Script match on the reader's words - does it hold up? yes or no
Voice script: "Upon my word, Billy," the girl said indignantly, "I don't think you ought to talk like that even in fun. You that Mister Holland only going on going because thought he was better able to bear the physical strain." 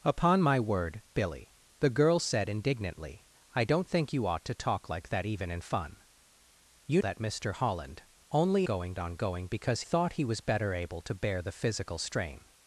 yes